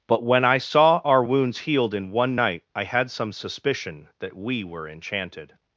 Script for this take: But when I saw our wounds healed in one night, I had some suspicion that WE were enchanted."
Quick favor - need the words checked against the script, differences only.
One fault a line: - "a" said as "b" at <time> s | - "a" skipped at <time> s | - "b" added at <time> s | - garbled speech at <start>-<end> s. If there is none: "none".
none